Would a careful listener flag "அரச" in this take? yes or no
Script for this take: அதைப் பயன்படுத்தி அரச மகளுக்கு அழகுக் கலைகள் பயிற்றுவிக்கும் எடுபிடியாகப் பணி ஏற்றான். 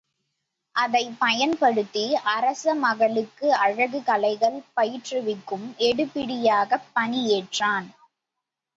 no